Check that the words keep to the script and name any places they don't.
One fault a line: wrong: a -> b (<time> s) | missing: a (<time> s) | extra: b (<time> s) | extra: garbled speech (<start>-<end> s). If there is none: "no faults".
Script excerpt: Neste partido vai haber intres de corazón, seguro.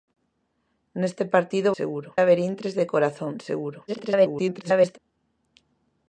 wrong: vai -> seguro (1.8 s)
extra: garbled speech (3.9-5.0 s)